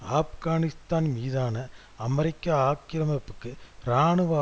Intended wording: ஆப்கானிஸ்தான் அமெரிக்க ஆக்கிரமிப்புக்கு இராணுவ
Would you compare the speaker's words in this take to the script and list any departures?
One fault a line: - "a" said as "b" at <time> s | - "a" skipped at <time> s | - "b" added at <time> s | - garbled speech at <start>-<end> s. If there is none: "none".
- "மீதான" added at 1.1 s